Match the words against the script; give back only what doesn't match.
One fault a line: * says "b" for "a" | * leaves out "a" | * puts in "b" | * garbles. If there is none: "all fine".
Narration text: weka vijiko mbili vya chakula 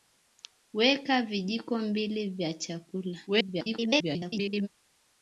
* garbles